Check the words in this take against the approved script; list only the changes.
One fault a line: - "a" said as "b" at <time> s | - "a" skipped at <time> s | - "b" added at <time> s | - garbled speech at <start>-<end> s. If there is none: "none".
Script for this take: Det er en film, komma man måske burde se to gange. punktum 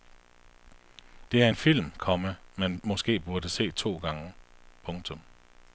none